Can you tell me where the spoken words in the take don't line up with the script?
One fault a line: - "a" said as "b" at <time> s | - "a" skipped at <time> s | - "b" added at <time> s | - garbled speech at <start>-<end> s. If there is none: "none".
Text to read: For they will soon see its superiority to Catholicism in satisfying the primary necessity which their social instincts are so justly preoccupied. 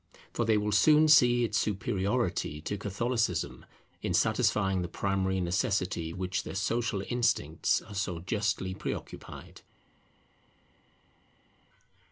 none